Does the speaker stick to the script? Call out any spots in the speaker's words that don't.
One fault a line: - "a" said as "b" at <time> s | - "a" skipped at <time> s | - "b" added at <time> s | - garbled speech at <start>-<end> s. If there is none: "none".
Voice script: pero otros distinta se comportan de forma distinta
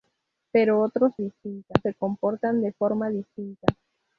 none